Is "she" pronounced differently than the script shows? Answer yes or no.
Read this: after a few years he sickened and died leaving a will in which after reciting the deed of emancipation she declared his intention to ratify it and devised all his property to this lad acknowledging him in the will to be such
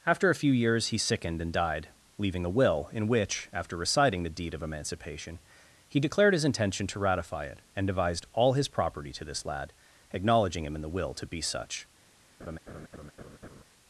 yes